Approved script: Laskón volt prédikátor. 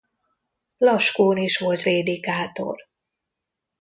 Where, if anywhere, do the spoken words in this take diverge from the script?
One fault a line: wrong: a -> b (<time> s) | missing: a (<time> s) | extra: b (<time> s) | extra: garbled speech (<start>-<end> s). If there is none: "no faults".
extra: is (1.4 s)